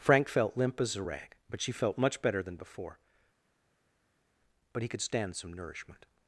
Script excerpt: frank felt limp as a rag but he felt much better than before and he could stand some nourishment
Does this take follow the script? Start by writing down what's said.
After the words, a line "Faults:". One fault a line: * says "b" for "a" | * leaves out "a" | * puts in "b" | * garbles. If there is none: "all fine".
frank felt limp as a rag but she felt much better than before but he could stand some nourishment
Faults:
* says "she" for "he"
* says "but" for "and"